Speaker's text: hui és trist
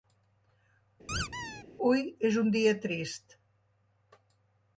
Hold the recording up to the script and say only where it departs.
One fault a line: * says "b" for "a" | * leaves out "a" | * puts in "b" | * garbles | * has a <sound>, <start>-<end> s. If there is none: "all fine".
* has a squeak, 1.1-1.6 s
* puts in "un dia"